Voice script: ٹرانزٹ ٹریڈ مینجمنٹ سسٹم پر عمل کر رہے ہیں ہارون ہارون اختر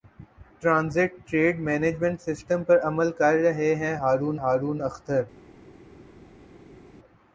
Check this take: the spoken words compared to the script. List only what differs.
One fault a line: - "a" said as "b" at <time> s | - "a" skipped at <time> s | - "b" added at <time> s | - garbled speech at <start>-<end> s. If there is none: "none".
none